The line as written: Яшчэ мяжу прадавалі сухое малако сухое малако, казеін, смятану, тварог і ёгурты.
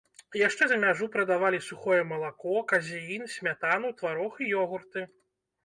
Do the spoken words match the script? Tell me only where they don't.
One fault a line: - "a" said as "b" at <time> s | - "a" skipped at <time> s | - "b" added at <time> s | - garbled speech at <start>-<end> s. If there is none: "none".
- "за" added at 0.7 s
- "сухое малако" skipped at 2.5 s